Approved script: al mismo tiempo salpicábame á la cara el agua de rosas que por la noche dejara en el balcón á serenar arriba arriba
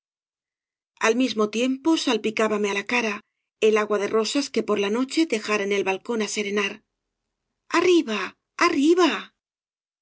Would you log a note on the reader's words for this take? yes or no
no